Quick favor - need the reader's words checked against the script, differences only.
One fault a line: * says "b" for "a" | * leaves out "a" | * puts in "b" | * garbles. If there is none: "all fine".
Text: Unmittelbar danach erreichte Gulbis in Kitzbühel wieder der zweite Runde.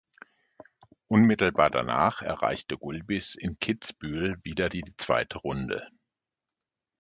* says "die" for "der"